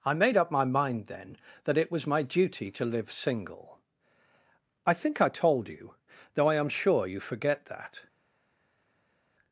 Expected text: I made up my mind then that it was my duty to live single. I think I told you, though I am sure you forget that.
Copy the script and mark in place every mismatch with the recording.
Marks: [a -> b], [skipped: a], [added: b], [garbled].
I made up my mind then that it was my duty to live single. I think I told you, though I am sure you forget that.